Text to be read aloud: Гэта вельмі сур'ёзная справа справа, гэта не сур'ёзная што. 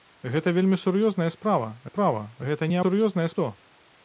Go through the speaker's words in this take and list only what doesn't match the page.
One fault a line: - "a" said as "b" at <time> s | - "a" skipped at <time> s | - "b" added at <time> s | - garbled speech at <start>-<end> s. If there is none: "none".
none